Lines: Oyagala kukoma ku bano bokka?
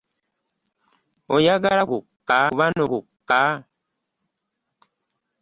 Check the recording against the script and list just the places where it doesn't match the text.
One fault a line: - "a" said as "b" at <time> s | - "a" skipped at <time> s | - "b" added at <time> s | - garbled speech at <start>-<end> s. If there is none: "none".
- "kukoma" said as "bokka" at 1.9 s